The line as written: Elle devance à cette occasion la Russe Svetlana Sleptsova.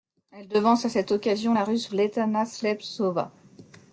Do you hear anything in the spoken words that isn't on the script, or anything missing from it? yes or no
no